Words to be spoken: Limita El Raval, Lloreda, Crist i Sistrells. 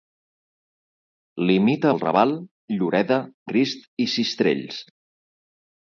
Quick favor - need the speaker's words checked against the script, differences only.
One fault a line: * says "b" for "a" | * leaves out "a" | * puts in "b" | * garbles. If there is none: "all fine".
all fine